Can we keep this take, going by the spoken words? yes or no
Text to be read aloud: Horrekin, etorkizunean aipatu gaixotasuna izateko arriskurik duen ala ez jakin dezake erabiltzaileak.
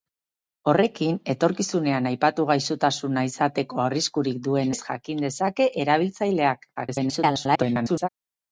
no